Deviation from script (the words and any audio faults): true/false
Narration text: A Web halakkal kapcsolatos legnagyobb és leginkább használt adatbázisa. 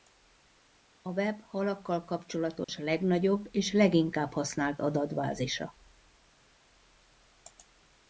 true